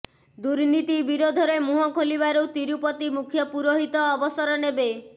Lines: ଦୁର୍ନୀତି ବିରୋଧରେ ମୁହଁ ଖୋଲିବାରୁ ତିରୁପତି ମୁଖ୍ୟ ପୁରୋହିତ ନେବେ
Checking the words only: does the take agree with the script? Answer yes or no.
no